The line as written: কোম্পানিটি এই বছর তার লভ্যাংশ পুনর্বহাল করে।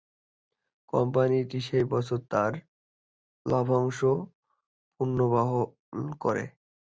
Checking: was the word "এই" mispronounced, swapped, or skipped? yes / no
yes